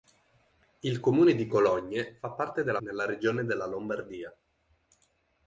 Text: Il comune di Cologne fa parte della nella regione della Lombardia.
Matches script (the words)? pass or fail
pass